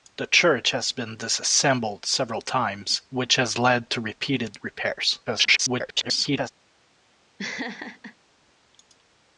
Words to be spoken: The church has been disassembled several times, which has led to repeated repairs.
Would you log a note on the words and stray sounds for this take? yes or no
yes